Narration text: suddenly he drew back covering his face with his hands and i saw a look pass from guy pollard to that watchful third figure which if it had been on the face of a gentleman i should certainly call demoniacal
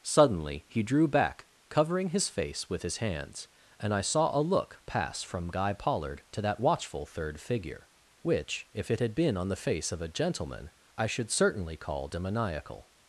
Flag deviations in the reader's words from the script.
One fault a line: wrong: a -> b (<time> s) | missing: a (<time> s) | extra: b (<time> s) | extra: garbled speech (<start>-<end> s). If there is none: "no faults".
no faults